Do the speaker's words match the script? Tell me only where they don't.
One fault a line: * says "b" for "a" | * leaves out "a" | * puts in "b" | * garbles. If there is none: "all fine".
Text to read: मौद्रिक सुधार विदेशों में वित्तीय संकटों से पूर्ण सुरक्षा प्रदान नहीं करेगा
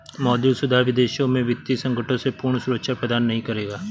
all fine